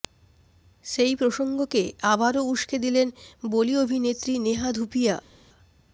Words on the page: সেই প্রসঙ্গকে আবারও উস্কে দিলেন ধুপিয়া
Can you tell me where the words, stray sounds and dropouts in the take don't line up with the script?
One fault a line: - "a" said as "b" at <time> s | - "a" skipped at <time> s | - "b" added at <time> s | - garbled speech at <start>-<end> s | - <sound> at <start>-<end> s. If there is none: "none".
- "বলি অভিনেত্রী নেহা" added at 3.5 s